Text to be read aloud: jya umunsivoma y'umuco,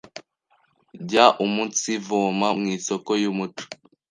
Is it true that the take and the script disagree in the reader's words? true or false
true